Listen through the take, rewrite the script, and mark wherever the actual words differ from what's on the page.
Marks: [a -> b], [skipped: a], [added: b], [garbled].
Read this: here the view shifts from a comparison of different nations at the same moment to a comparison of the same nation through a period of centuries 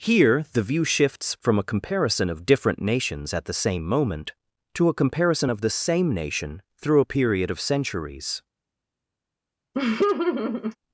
here the view shifts from a comparison of different nations at the same moment to a comparison of the same nation through a period of centuries